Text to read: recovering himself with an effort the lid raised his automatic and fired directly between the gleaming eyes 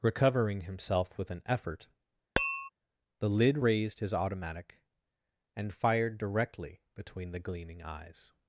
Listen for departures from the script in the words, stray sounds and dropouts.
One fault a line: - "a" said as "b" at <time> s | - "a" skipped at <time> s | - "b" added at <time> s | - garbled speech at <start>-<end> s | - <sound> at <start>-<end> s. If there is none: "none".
- tap at 2.4-2.7 s